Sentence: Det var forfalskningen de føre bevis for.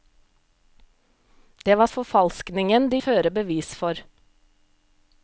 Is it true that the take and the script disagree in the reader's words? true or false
false